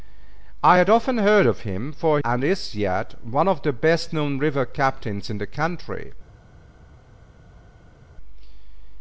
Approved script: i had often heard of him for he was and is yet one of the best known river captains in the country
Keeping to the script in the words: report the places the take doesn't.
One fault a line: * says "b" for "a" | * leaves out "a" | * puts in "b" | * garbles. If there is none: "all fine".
* leaves out "he was"